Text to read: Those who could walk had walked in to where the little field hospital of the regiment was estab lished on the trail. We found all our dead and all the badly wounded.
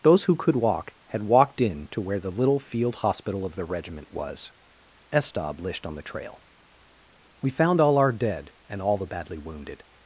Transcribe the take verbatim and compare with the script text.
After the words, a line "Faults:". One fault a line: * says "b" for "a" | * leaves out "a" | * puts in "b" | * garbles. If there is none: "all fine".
Those who could walk had walked in to where the little field hospital of the regiment was estab lished on the trail. We found all our dead and all the badly wounded.
Faults:
all fine